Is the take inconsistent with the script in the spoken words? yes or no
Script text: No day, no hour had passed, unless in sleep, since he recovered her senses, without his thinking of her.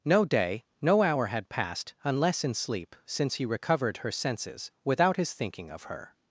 no